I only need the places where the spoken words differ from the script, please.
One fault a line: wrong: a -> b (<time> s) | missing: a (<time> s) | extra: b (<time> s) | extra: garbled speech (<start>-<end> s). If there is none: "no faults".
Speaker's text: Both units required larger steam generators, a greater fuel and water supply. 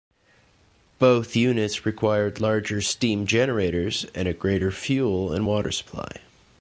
extra: and (4.2 s)